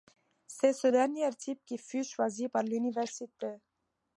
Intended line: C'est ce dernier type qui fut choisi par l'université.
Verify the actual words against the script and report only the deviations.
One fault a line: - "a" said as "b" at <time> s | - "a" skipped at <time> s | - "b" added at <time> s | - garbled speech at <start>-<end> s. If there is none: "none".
none